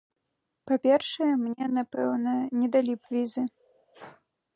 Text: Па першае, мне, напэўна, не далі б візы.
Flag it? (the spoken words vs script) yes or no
no